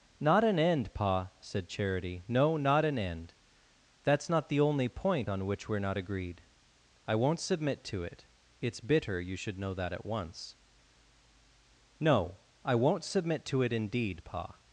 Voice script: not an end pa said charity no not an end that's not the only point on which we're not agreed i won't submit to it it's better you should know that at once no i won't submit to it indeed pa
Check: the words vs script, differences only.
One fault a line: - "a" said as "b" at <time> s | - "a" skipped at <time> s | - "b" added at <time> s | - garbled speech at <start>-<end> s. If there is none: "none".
- "better" said as "bitter" at 8.8 s